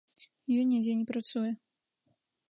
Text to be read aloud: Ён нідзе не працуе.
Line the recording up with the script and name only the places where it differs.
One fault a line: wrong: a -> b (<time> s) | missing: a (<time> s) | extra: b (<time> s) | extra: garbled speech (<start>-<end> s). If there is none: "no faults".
no faults